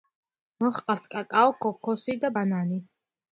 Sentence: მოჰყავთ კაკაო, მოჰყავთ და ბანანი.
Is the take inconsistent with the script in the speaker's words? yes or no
yes